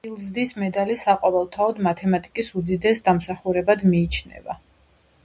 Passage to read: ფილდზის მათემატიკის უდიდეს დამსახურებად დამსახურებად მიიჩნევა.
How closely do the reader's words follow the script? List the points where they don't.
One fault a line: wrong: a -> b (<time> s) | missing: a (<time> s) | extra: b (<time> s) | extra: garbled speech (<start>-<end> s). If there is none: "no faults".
extra: მედალი საყოველთაოდ (0.6 s)
missing: დამსახურებად (3.9 s)